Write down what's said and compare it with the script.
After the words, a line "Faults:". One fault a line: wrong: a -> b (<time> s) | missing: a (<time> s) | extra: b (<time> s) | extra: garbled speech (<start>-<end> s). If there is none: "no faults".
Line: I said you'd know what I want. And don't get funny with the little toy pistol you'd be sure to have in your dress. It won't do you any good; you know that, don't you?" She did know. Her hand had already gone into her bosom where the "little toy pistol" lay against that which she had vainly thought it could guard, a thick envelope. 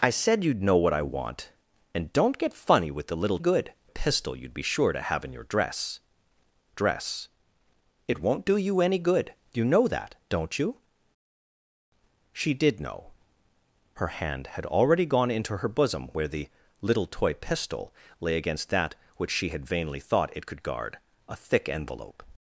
I said you'd know what I want. And don't get funny with the little good pistol you'd be sure to have in your dress dress. It won't do you any good; you know that, don't you?" She did know. Her hand had already gone into her bosom where the "little toy pistol" lay against that which she had vainly thought it could guard, a thick envelope.
Faults:
wrong: toy -> good (3.4 s)
extra: dress (6.7 s)